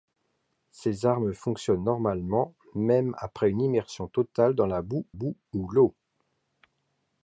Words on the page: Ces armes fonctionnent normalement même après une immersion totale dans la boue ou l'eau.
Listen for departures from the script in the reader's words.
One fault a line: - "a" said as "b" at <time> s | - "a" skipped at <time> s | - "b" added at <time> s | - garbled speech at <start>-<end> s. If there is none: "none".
- "boue" added at 5.1 s